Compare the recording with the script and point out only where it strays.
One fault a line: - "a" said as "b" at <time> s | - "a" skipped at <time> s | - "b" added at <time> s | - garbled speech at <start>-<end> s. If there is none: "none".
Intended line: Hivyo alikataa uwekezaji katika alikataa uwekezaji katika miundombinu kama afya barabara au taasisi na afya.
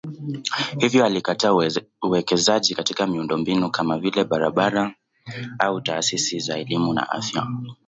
- "alikataa uwekezaji katika" skipped at 3.1 s
- "afya" said as "vile" at 4.0 s
- "za elimu" added at 6.4 s